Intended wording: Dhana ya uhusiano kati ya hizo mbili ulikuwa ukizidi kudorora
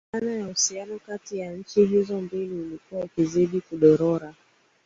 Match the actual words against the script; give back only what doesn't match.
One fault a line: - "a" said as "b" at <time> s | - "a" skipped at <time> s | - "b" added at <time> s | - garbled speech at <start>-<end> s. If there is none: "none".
- "nchi" added at 1.5 s